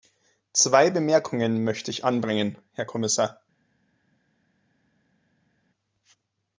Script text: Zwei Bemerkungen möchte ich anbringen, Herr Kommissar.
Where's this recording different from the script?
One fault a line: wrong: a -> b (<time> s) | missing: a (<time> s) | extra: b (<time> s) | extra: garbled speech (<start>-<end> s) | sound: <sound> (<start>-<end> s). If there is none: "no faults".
no faults